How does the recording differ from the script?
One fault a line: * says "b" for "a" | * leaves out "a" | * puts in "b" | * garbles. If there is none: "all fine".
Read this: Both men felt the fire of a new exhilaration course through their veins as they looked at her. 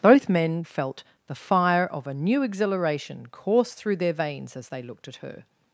all fine